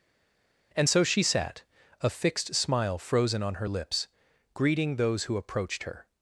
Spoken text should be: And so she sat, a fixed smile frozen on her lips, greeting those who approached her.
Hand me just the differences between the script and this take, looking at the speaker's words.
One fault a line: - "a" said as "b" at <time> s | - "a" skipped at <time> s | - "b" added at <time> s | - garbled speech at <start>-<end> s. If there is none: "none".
none